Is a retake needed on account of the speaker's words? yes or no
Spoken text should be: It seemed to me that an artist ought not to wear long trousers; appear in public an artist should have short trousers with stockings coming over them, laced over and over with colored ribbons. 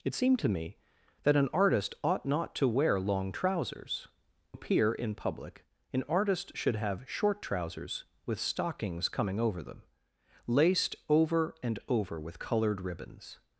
no